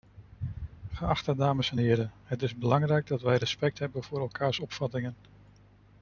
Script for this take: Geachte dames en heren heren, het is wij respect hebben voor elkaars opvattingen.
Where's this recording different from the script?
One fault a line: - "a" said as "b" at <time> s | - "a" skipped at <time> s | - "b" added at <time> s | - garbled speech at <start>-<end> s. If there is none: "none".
- "heren" skipped at 2.1 s
- "belangrijk dat" added at 2.5 s